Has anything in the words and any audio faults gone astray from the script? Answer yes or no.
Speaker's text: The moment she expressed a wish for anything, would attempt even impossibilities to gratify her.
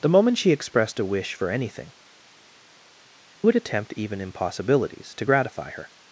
no